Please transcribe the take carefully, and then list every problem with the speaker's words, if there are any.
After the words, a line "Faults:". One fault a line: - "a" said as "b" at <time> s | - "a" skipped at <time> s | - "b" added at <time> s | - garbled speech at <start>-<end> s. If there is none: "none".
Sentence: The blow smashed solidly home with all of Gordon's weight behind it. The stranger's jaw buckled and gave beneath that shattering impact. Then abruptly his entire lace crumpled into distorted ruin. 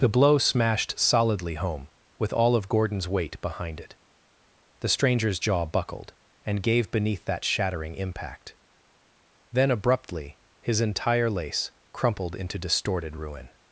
The blow smashed solidly home with all of Gordon's weight behind it. The stranger's jaw buckled and gave beneath that shattering impact. Then abruptly his entire lace crumpled into distorted ruin.
Faults:
none